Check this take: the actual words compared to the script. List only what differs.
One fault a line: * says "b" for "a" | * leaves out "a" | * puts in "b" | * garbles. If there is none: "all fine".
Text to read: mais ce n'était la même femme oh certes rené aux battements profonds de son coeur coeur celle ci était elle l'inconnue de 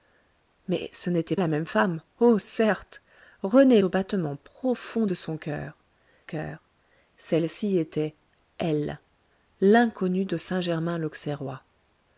all fine